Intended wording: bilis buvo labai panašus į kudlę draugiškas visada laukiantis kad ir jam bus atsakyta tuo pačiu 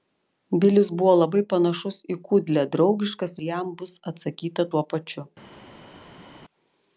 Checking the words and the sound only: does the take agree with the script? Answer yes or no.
no